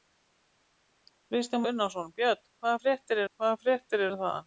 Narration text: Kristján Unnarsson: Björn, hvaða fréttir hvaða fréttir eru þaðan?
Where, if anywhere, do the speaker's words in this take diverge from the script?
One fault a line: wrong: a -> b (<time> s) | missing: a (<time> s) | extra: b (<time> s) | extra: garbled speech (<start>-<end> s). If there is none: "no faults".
no faults